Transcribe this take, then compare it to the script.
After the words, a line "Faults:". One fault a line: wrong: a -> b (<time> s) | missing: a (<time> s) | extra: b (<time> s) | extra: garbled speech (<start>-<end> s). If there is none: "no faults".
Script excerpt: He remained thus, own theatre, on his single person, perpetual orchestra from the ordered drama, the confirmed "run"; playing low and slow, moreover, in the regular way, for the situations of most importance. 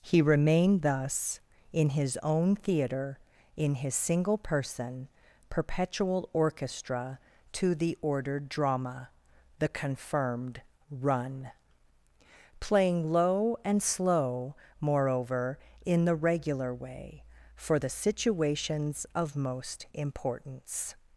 He remained thus, in his own theatre, in his single person, perpetual orchestra to the ordered drama, the confirmed "run"; playing low and slow, moreover, in the regular way, for the situations of most importance.
Faults:
extra: in his (1.7 s)
wrong: on -> in (3.5 s)
wrong: from -> to (7.5 s)